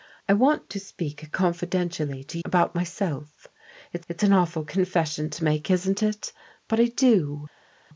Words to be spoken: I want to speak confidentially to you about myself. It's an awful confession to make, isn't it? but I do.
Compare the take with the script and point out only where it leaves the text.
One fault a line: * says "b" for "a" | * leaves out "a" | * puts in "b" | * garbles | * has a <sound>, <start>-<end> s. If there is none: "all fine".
* leaves out "you"
* puts in "it's"